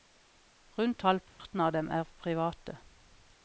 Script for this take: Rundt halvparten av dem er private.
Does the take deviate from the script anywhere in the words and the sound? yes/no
yes